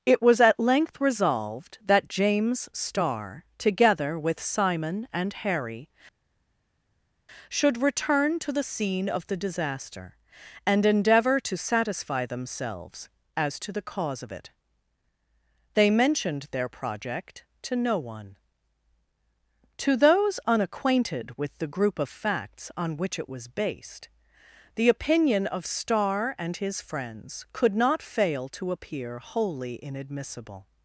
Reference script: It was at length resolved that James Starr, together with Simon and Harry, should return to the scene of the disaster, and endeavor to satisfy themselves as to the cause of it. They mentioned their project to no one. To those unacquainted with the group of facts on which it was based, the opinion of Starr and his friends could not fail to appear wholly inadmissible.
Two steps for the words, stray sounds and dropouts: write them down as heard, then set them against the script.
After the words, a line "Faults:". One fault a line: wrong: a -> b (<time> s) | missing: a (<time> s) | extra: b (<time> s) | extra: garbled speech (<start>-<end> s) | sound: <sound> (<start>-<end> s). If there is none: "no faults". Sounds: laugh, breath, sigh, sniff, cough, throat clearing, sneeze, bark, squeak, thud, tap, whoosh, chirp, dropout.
It was at length resolved that James Starr, together with Simon and Harry, should return to the scene of the disaster, and endeavor to satisfy themselves as to the cause of it. They mentioned their project to no one. To those unacquainted with the group of facts on which it was based, the opinion of Starr and his friends could not fail to appear wholly inadmissible.
Faults:
no faults